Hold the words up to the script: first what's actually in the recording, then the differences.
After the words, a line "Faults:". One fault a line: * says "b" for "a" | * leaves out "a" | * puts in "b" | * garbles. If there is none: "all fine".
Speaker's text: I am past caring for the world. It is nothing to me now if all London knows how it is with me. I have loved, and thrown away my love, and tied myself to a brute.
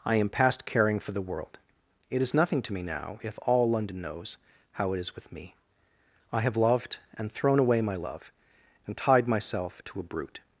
I am past caring for the world. It is nothing to me now if all London knows how it is with me. I have loved, and thrown away my love, and tied myself to a brute.
Faults:
all fine